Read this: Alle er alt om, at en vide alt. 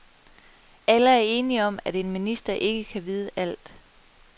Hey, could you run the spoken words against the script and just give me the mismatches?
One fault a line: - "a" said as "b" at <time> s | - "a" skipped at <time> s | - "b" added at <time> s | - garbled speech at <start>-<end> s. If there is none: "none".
- "alt" said as "enige" at 1.2 s
- "minister ikke kan" added at 2.1 s